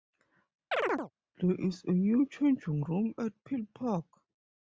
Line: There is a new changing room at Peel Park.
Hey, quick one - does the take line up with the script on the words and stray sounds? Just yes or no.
no